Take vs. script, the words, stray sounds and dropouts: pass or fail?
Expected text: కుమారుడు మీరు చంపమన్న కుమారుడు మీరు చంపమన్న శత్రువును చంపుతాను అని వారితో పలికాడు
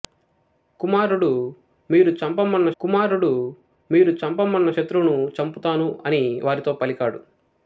pass